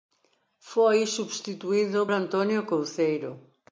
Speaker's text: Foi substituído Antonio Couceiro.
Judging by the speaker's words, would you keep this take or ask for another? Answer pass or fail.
pass